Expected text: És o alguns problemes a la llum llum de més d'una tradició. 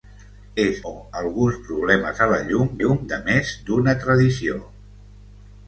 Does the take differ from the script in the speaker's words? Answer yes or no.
no